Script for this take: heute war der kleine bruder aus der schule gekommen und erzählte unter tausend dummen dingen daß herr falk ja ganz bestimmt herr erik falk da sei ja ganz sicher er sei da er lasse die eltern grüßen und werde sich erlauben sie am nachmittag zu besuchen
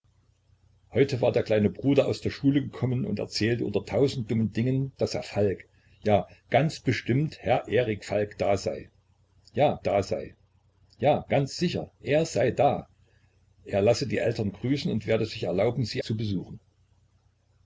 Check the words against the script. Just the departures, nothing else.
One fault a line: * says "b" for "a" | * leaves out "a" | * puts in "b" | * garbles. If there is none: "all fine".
* puts in "da sei ja"
* leaves out "am nachmittag"